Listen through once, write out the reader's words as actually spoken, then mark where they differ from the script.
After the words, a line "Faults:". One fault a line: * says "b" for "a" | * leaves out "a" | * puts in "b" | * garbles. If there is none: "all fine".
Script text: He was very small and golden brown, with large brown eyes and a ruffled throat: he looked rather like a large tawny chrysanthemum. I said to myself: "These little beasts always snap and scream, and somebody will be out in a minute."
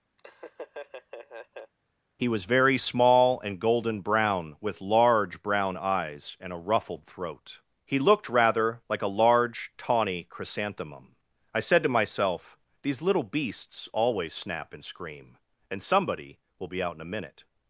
He was very small and golden brown, with large brown eyes and a ruffled throat: he looked rather like a large tawny chrysanthemum. I said to myself: "These little beasts always snap and scream, and somebody will be out in a minute."
Faults:
all fine